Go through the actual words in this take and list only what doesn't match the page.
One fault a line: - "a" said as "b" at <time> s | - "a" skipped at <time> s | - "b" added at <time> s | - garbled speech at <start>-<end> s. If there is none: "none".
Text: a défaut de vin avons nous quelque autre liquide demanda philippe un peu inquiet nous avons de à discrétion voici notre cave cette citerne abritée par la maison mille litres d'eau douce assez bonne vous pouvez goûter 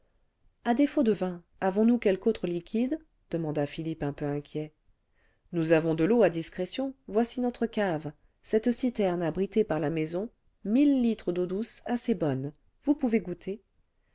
- "l'eau" added at 6.0 s